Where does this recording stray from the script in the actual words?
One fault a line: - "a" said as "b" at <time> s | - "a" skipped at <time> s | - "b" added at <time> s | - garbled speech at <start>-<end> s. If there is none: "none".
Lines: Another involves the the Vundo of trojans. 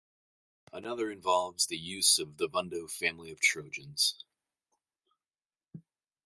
- "use of" added at 1.8 s
- "family" added at 2.9 s